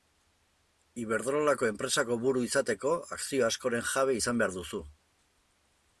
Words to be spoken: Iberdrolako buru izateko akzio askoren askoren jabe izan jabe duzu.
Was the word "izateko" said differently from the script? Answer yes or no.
no